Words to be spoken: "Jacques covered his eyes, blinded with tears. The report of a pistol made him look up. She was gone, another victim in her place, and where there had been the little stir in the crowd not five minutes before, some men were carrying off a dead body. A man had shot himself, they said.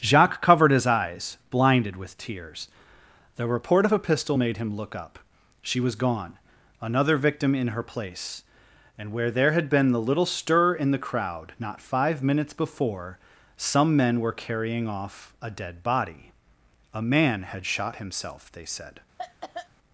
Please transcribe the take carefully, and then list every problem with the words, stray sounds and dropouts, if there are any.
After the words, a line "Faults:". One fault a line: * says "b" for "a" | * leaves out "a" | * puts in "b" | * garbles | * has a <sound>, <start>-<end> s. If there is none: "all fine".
"Jacques covered his eyes, blinded with tears. The report of a pistol made him look up. She was gone, another victim in her place, and where there had been the little stir in the crowd not five minutes before, some men were carrying off a dead body. A man had shot himself, they said.
Faults:
* has a cough, 19.2-19.7 s